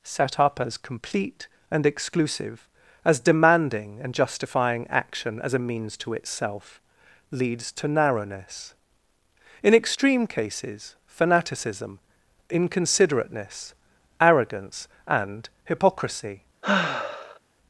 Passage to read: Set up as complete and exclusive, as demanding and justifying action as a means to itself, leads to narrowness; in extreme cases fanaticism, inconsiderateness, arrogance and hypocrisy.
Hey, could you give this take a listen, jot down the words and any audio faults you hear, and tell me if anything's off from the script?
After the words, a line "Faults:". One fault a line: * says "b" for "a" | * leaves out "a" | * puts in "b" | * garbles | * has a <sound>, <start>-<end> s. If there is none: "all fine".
Set up as complete and exclusive, as demanding and justifying action as a means to itself, leads to narrowness; in extreme cases fanaticism, inconsiderateness, arrogance and hypocrisy.
Faults:
* has a sigh, 16.6-17.4 s